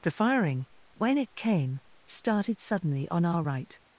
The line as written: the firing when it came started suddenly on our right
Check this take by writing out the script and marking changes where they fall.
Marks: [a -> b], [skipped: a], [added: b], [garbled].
the firing when it came started suddenly on our right